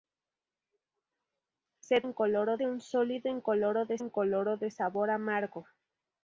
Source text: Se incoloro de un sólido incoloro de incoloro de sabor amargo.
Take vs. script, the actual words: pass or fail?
pass